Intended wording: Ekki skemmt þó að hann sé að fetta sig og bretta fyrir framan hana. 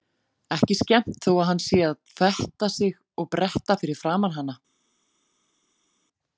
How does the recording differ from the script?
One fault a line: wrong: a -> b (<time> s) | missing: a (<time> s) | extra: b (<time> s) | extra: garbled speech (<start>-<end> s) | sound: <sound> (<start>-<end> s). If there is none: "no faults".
no faults